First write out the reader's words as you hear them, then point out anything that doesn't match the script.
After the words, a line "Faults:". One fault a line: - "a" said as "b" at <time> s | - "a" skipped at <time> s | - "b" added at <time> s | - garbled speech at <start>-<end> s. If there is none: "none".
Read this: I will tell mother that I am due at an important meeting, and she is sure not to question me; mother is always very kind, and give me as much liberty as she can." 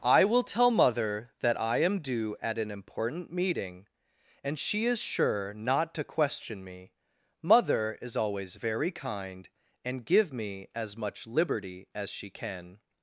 I will tell mother that I am due at an important meeting, and she is sure not to question me; mother is always very kind, and give me as much liberty as she can."
Faults:
none